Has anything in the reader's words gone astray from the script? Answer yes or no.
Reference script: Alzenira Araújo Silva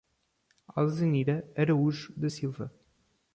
yes